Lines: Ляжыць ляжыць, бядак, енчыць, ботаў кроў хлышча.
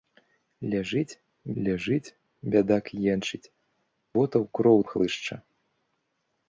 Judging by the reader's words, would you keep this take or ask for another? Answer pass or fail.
pass